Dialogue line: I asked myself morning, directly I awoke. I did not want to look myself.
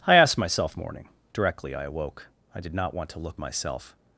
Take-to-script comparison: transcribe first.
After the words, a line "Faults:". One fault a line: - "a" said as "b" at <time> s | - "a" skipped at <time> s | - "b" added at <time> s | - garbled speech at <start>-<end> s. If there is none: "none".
I asked myself morning, directly I awoke. I did not want to look myself.
Faults:
none